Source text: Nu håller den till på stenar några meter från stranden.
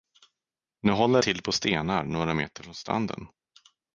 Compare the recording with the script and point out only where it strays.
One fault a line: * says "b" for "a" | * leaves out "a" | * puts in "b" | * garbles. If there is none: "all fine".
* leaves out "den"